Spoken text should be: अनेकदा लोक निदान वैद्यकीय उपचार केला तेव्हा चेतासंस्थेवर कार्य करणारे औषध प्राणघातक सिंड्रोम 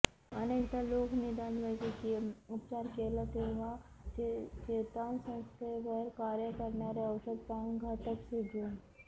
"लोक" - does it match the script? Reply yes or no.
yes